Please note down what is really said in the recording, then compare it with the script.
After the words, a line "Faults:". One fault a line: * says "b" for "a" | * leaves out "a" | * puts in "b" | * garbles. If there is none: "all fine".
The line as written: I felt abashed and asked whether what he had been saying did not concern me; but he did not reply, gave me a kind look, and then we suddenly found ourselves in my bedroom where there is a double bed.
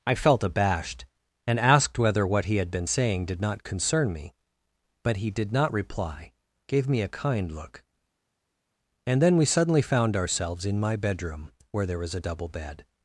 I felt abashed and asked whether what he had been saying did not concern me; but he did not reply, gave me a kind look, and then we suddenly found ourselves in my bedroom where there was a double bed.
Faults:
* says "was" for "is"